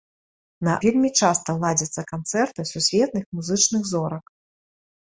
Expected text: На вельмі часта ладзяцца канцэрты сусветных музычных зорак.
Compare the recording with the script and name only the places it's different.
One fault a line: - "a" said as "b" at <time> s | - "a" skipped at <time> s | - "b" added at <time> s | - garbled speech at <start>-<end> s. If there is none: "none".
none